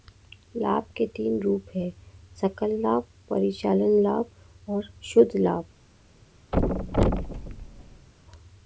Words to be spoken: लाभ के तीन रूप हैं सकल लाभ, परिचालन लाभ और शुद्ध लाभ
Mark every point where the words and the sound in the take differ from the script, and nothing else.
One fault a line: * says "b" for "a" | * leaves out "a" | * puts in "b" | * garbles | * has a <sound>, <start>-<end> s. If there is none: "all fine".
* has a thud, 6.5-8.1 s